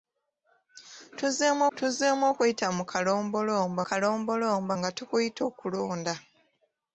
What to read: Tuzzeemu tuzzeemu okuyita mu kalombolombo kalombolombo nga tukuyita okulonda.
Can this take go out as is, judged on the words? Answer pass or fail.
pass